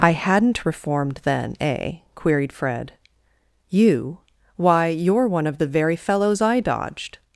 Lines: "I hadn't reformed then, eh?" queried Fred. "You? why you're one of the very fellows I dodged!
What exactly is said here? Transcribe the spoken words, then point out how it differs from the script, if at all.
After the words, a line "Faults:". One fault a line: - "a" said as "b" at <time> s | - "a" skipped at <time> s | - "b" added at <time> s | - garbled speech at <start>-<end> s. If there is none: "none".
"I hadn't reformed then, eh?" queried Fred. "You? why you're one of the very fellows I dodged!
Faults:
none